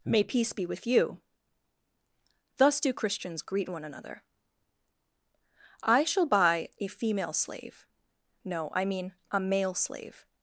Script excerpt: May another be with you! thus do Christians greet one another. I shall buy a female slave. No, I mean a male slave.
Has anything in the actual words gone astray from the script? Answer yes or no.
yes